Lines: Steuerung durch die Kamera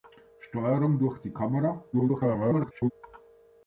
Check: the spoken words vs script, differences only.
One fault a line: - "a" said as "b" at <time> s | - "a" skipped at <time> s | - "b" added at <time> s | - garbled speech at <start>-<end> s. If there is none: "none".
- garbled speech at 1.9-2.9 s